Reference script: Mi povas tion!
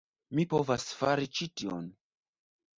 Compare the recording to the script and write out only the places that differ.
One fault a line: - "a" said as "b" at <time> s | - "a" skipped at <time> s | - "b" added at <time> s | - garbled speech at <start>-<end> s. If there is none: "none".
- "fari ĉi" added at 1.0 s